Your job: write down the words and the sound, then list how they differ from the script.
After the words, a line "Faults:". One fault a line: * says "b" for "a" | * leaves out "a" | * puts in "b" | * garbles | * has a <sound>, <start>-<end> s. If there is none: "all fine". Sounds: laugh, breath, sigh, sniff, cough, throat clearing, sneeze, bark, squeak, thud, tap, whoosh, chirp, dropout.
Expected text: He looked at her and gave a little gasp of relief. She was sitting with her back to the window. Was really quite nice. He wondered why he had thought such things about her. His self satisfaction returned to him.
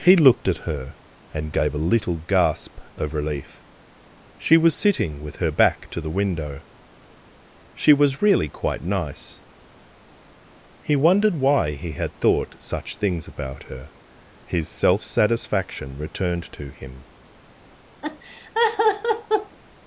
He looked at her and gave a little gasp of relief. She was sitting with her back to the window. She was really quite nice. He wondered why he had thought such things about her. His self satisfaction returned to him.
Faults:
* puts in "She"
* has a laugh, 18.0-19.6 s